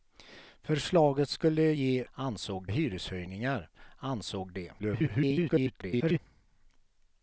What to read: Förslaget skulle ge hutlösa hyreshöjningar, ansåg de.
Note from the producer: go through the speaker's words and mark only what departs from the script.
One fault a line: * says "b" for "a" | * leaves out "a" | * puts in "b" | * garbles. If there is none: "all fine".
* says "ansåg" for "hutlösa"
* garbles